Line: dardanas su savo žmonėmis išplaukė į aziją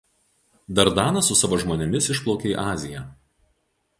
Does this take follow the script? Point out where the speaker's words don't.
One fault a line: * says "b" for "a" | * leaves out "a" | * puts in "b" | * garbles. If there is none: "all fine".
all fine